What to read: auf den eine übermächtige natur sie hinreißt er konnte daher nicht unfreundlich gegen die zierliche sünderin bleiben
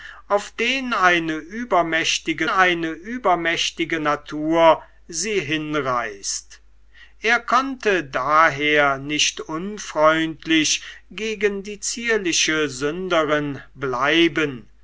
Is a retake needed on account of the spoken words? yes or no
yes